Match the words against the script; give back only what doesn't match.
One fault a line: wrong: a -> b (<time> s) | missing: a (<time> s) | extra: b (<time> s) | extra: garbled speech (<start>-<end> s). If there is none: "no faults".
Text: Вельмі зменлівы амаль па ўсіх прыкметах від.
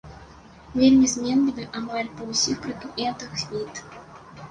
no faults